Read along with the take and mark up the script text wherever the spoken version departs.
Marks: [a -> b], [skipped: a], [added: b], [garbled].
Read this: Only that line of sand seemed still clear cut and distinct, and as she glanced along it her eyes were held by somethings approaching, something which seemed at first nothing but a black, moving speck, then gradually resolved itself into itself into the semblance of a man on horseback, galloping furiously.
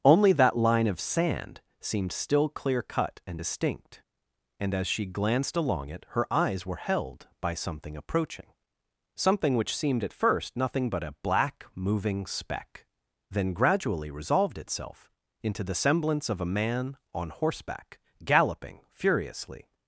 Only that line of sand seemed still clear cut and distinct, and as she glanced along it her eyes were held by [somethings -> something] approaching, something which seemed at first nothing but a black, moving speck, then gradually resolved itself into [skipped: itself into] the semblance of a man on horseback, galloping furiously.